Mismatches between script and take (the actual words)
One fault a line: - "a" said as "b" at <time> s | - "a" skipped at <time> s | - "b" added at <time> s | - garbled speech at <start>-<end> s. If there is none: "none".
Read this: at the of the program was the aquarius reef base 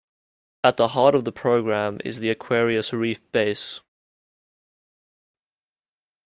- "heart" added at 0.9 s
- "was" said as "is" at 2.0 s